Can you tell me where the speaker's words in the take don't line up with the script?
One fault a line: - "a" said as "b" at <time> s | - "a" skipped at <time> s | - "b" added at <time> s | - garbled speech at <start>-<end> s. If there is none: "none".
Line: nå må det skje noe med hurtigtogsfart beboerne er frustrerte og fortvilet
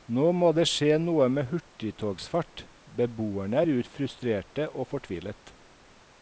none